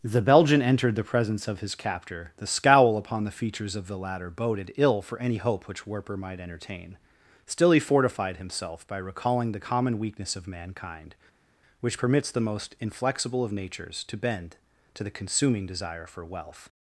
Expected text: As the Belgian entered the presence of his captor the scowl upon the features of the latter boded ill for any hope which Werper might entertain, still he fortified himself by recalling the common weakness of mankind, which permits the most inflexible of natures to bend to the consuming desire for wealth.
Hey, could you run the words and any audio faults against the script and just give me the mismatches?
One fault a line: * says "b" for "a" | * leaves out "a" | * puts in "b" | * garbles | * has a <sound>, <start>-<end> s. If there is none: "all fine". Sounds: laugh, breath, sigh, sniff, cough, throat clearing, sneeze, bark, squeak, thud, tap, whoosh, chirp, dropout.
* leaves out "As"